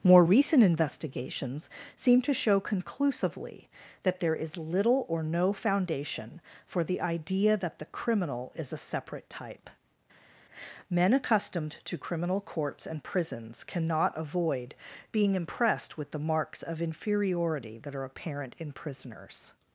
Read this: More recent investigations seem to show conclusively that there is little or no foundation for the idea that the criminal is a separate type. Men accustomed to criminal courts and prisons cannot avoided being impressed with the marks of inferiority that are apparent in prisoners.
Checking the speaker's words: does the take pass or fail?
fail